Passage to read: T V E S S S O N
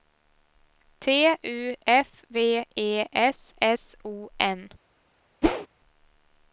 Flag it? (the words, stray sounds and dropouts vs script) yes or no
yes